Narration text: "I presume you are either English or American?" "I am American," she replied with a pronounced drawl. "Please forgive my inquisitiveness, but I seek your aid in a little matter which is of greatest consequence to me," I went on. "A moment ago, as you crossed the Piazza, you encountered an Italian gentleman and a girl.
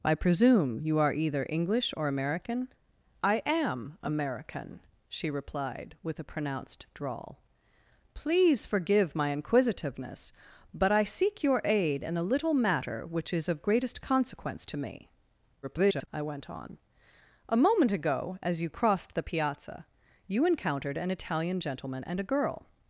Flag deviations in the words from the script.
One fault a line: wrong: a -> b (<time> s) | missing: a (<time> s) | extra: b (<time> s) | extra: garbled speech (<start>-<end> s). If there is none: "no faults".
extra: garbled speech (15.6-16.1 s)